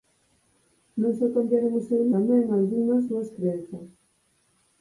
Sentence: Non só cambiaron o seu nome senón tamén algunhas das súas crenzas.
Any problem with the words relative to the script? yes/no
yes